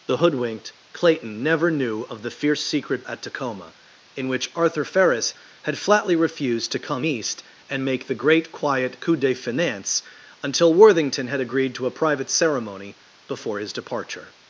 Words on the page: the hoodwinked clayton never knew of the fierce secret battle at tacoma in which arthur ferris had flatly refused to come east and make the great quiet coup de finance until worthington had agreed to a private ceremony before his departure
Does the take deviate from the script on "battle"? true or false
true